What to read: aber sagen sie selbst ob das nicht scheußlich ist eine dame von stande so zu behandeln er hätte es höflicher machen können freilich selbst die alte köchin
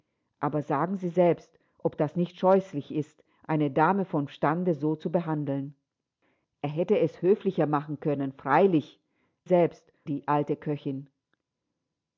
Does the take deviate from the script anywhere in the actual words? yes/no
no